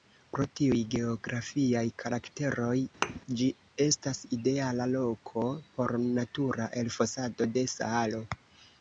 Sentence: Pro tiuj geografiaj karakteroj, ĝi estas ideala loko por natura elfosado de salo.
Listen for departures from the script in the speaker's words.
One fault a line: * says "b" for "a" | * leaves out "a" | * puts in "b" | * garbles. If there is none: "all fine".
all fine